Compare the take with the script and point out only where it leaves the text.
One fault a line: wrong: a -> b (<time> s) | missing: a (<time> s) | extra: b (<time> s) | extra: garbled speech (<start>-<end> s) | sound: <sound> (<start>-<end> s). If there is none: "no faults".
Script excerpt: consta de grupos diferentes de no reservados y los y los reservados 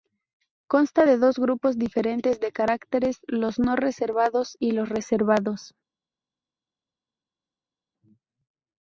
extra: dos (1.2 s)
extra: caracteres los (2.5 s)
missing: y los (4.9 s)